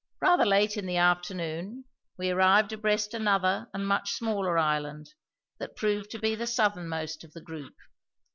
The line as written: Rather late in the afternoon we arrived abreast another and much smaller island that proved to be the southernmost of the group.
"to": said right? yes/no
yes